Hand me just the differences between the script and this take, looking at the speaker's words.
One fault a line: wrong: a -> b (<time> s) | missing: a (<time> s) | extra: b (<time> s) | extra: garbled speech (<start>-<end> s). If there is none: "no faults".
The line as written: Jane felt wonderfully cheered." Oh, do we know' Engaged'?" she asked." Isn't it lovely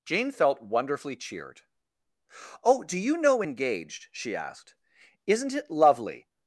wrong: we -> you (3.0 s)